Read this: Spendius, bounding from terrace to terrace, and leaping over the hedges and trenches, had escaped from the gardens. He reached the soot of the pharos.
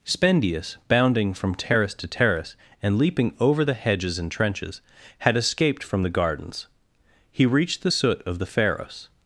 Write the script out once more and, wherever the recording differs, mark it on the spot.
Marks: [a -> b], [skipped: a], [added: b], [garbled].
Spendius, bounding from terrace to terrace, and leaping over the hedges and trenches, had escaped from the gardens. He reached the soot of the pharos.